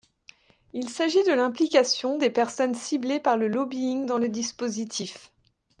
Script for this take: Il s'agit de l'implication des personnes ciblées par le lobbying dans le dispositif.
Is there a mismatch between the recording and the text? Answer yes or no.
no